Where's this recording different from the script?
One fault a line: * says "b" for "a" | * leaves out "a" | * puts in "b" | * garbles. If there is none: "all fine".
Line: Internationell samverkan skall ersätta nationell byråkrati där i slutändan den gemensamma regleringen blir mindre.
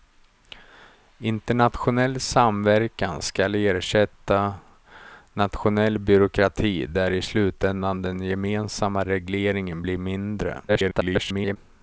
* garbles